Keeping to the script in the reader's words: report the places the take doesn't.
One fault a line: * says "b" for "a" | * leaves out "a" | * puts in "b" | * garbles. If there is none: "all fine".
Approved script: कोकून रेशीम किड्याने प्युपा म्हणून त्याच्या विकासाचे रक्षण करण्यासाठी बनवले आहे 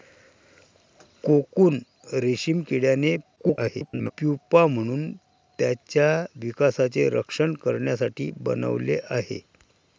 * garbles